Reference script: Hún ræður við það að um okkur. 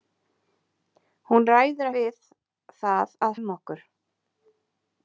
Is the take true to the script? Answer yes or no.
yes